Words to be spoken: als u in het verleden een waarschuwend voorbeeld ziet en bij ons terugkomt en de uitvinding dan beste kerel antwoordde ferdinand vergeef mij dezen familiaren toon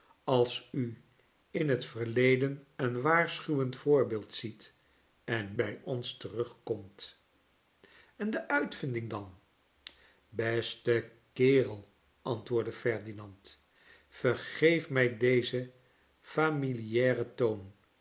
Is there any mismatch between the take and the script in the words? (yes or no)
no